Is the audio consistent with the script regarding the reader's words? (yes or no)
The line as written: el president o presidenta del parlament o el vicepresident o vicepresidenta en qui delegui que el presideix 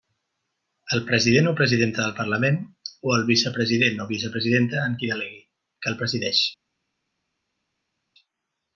yes